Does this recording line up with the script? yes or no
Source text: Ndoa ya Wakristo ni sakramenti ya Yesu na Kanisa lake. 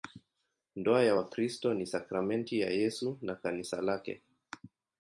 yes